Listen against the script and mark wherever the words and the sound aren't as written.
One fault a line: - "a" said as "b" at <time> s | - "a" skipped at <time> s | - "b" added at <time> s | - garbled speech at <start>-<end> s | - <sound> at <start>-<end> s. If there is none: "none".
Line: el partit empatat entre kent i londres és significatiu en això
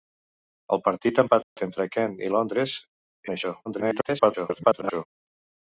- dropout at 1.4-1.6 s
- "és significatiu" skipped at 2.8 s
- garbled speech at 3.6-5.1 s